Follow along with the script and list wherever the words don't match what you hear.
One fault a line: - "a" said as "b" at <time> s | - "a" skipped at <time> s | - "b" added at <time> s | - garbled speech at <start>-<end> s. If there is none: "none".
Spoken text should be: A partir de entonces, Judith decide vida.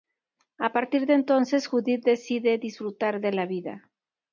- "disfrutar de la" added at 2.6 s